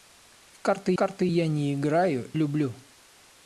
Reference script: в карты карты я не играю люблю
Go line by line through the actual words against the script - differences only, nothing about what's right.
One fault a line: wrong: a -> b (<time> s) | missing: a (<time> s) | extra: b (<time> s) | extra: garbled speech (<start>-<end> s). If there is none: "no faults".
no faults